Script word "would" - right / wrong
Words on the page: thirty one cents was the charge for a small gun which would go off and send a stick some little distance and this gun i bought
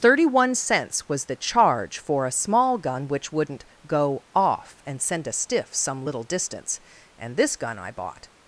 wrong